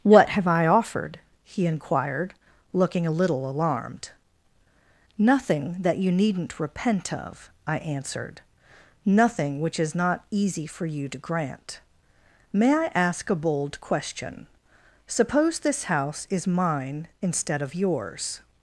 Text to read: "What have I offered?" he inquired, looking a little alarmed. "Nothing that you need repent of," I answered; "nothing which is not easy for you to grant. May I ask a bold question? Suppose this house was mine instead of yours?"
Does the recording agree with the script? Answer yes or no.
no